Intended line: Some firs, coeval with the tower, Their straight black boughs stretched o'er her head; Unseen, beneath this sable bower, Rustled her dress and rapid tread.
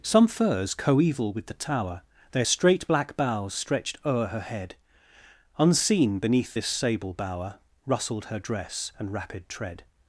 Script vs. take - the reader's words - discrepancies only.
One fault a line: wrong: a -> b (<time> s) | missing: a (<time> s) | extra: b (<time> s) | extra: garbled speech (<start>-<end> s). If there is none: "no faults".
no faults